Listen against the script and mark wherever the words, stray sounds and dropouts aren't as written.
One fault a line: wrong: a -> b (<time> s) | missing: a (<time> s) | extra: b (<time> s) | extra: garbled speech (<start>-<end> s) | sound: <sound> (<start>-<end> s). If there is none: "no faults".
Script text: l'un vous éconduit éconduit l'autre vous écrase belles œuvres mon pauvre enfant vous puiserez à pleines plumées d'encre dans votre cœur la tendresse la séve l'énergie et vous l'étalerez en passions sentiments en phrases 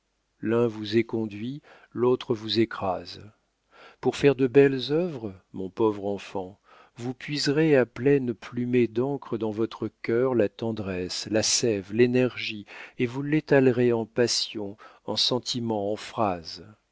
missing: éconduit (1.6 s)
extra: pour faire de (4.0 s)
extra: en (15.0 s)